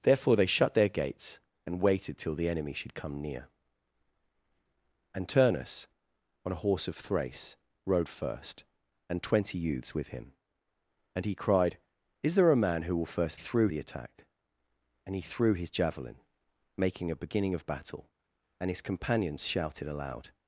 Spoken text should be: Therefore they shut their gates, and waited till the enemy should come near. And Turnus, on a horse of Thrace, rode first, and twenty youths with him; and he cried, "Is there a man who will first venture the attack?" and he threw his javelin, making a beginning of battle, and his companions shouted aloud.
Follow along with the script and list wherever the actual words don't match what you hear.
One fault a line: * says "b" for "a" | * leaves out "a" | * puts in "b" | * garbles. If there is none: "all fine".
* says "threw" for "venture"